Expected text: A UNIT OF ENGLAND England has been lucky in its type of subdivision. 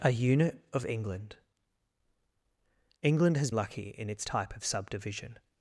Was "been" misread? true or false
true